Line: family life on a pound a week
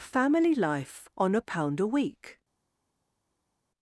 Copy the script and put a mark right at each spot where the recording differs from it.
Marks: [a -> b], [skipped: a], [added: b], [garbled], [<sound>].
family life on a pound a week